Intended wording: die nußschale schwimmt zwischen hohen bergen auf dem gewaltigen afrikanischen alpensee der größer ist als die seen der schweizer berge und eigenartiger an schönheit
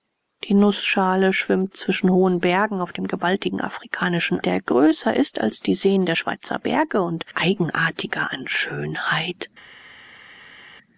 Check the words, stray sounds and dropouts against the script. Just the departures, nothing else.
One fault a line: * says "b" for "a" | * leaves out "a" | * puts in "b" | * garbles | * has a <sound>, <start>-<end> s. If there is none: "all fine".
* leaves out "alpensee"